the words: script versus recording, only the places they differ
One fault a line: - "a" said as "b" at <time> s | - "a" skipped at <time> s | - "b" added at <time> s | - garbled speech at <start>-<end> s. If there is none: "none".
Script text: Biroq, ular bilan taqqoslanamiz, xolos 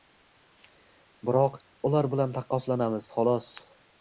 none